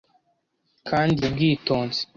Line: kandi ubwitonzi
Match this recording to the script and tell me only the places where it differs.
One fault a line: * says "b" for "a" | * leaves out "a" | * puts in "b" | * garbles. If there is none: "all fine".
all fine